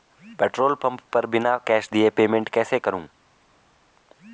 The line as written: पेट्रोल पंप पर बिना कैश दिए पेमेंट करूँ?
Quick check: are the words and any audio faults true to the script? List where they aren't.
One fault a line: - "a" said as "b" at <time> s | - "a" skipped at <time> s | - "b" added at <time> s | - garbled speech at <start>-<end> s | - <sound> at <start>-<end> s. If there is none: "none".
- "कैसे" added at 2.5 s